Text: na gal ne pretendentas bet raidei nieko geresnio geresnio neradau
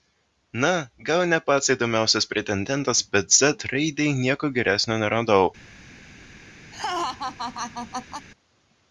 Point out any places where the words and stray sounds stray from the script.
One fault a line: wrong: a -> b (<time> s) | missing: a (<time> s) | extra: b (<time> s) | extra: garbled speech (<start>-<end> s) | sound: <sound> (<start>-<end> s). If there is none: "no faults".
extra: pats įdomiausias (1.5 s)
extra: z (3.4 s)
missing: geresnio (5.0 s)
sound: laugh (6.7-8.3 s)